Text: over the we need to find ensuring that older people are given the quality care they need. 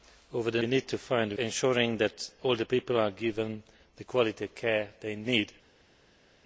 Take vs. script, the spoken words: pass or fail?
pass